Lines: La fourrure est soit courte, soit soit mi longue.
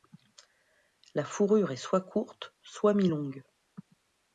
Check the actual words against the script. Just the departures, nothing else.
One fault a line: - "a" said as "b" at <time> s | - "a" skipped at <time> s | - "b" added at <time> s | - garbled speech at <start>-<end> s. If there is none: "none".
- "soit" skipped at 3.0 s